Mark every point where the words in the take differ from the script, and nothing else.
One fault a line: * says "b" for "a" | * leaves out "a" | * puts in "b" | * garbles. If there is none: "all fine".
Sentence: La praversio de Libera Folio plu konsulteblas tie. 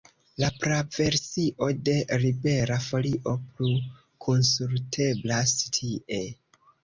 all fine